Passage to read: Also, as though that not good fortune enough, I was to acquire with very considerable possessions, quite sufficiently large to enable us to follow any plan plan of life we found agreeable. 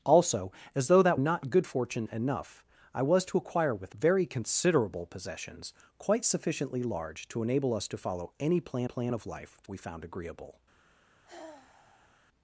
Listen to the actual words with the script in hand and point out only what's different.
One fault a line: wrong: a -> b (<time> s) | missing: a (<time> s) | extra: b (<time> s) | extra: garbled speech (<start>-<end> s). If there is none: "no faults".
no faults